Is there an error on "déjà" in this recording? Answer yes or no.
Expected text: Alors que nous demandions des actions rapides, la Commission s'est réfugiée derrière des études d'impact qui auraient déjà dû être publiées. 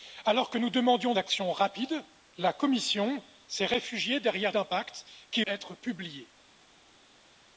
yes